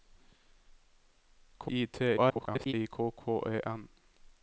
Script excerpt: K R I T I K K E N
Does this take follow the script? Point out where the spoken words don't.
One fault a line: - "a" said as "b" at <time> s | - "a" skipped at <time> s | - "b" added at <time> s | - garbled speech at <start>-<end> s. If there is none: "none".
- "R" skipped at 1.7 s
- garbled speech at 2.2-2.7 s